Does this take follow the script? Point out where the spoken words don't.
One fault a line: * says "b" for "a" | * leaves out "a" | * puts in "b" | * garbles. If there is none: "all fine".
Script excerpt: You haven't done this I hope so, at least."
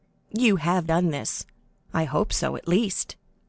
* says "have" for "haven't"